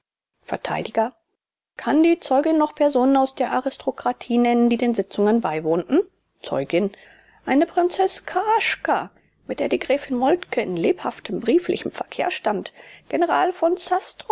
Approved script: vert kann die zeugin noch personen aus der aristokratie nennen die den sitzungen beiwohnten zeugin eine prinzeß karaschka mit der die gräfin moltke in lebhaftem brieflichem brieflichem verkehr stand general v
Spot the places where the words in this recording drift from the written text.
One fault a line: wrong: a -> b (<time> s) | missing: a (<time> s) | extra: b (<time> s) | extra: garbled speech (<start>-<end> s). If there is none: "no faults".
missing: brieflichem (11.9 s)